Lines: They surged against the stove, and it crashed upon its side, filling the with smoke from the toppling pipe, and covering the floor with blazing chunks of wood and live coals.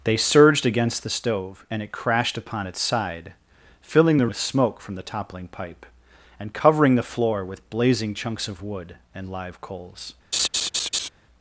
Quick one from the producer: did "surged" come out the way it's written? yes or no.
yes